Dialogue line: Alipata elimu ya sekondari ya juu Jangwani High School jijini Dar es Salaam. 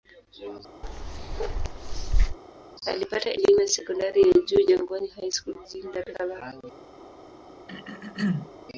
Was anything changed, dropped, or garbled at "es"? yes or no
yes